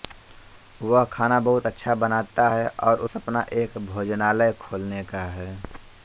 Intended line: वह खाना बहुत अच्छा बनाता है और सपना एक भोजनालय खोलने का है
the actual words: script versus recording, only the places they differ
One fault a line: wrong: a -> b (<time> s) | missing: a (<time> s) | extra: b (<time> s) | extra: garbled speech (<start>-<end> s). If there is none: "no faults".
no faults